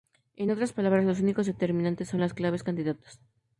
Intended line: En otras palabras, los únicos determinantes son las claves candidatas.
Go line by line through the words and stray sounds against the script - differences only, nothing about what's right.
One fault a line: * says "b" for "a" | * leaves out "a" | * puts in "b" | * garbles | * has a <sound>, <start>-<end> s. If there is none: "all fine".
all fine